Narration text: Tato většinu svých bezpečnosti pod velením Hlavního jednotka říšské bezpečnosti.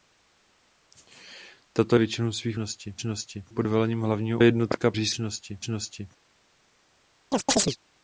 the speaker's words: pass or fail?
pass